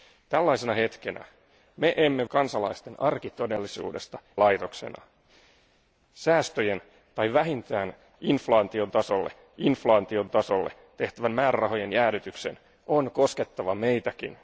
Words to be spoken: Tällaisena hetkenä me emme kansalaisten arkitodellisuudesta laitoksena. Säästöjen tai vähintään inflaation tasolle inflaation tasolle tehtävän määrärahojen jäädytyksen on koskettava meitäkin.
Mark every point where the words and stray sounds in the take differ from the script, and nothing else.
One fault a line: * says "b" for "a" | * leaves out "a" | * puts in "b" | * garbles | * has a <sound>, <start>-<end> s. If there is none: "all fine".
all fine